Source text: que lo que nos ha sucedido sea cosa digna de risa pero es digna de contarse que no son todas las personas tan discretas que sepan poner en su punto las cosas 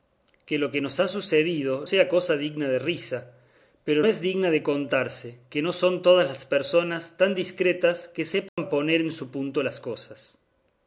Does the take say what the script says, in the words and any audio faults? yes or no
no